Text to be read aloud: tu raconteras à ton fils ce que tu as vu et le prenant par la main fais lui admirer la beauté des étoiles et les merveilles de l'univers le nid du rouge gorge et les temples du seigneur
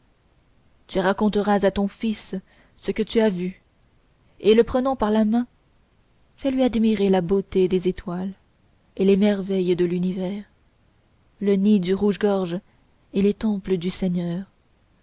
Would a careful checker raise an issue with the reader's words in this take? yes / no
no